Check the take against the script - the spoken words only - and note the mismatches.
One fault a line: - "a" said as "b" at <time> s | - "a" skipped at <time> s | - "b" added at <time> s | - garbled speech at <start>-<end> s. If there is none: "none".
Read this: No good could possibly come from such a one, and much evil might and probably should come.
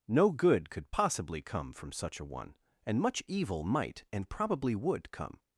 - "should" said as "would" at 4.7 s